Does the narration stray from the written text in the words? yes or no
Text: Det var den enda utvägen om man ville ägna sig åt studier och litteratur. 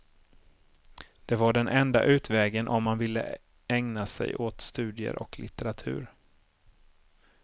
no